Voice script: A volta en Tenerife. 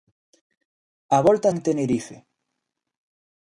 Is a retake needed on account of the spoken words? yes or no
no